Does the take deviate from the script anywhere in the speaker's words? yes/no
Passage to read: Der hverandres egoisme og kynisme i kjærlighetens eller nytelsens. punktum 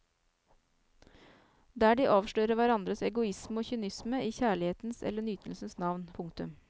yes